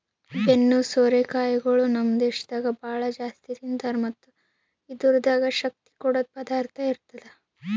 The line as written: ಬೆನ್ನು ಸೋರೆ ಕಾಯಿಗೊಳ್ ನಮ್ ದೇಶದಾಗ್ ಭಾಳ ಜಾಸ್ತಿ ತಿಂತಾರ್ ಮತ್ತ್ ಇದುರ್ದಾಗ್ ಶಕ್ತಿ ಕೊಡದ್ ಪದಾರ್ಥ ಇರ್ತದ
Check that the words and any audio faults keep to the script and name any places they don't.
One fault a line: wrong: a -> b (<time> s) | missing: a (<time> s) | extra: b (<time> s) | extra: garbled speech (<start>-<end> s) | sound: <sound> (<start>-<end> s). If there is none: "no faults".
no faults